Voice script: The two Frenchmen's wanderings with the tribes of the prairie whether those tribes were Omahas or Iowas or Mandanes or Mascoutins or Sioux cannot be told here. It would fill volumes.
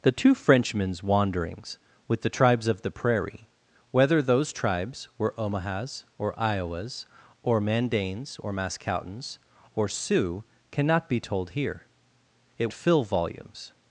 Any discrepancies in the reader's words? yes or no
yes